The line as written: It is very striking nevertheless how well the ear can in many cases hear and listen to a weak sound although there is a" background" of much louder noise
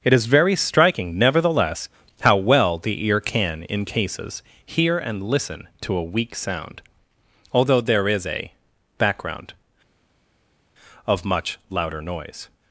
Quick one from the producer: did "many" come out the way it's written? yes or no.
no